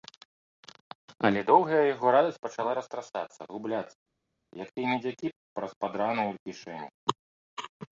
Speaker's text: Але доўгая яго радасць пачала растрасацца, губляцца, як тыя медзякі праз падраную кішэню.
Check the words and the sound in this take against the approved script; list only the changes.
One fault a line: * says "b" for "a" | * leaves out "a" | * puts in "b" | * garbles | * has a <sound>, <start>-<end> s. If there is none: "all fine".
all fine